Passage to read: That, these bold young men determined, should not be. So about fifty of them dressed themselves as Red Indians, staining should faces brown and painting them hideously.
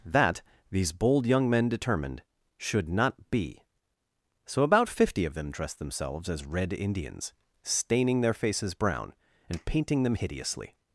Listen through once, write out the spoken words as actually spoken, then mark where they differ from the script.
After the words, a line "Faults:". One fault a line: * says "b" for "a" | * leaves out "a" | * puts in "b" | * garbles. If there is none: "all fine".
That, these bold young men determined, should not be. So about fifty of them dressed themselves as Red Indians, staining their faces brown and painting them hideously.
Faults:
* says "their" for "should"